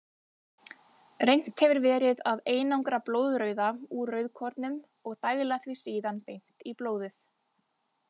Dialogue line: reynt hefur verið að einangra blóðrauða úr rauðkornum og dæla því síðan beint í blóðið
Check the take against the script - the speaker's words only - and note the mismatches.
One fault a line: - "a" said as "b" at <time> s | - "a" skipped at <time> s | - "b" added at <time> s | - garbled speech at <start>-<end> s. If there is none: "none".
none